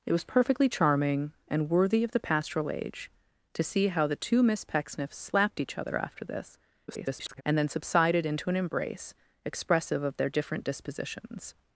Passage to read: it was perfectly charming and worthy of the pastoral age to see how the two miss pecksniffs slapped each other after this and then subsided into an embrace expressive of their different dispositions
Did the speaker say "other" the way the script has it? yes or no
yes